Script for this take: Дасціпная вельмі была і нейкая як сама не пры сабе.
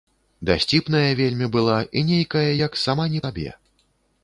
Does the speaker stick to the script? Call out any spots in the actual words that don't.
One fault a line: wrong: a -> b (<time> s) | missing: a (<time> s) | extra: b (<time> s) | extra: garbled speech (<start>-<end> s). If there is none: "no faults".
missing: пры (3.2 s)